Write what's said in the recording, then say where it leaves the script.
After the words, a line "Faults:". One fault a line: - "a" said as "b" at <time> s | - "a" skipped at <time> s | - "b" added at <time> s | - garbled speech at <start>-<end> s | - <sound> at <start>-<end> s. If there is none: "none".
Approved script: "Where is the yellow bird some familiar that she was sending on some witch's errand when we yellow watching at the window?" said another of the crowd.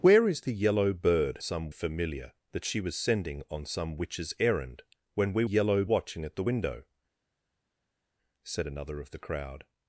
"Where is the yellow bird some familiar that she was sending on some witch's errand when we yellow watching at the window?" said another of the crowd.
Faults:
none